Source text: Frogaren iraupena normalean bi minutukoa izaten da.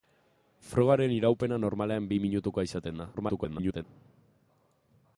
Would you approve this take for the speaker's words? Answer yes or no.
no